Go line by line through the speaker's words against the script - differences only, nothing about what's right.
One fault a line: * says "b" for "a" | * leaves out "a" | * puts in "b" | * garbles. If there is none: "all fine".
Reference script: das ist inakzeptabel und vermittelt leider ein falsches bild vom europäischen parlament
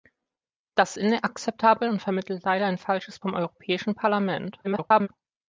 * leaves out "ist"
* leaves out "bild"
* garbles